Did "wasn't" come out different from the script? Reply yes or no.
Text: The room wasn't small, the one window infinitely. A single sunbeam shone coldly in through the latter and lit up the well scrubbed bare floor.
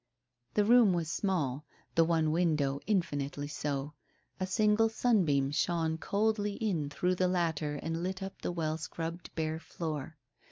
yes